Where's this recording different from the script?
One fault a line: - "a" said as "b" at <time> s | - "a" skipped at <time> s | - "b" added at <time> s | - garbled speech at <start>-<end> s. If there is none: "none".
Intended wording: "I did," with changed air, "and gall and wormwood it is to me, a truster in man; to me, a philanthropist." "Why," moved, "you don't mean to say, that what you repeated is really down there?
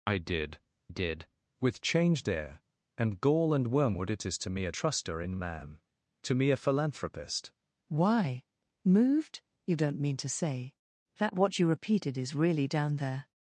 - "did" added at 0.9 s